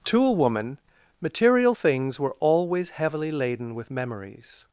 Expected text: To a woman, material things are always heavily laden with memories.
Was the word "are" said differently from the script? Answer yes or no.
yes